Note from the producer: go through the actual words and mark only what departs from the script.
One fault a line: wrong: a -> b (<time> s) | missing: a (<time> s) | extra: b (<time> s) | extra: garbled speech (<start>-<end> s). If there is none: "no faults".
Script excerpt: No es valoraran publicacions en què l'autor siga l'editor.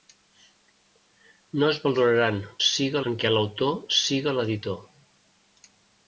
wrong: publicacions -> siga (2.7 s)